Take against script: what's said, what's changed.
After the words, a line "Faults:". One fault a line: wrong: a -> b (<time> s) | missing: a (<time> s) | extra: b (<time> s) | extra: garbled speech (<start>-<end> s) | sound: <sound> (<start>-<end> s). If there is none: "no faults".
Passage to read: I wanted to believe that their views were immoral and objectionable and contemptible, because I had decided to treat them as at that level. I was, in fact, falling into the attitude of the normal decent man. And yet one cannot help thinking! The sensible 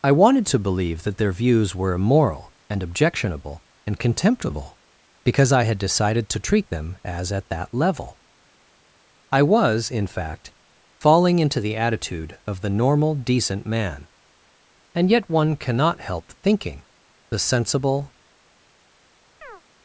I wanted to believe that their views were immoral and objectionable and contemptible, because I had decided to treat them as at that level. I was, in fact, falling into the attitude of the normal decent man. And yet one cannot help thinking! The sensible
Faults:
sound: chirp (19.4-19.6 s)